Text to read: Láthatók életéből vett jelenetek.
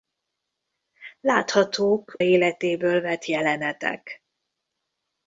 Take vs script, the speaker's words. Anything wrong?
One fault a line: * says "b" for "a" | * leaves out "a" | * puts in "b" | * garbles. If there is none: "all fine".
all fine